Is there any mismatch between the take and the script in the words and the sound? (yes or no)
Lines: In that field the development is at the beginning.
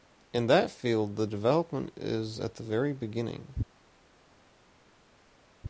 yes